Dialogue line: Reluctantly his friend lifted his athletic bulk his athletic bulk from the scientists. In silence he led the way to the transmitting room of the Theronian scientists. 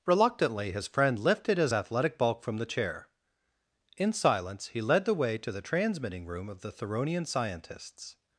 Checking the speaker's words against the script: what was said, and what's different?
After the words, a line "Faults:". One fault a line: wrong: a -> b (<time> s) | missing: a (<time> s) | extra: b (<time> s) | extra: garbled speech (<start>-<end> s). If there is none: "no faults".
Reluctantly his friend lifted his athletic bulk from the chair. In silence he led the way to the transmitting room of the Theronian scientists.
Faults:
missing: his athletic bulk (2.4 s)
wrong: scientists -> chair (2.7 s)